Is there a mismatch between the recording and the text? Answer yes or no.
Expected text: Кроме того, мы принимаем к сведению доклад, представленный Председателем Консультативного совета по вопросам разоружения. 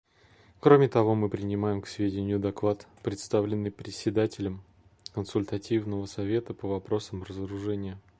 no